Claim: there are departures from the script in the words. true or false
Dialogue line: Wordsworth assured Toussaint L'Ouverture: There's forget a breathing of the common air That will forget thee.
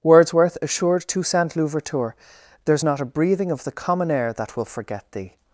true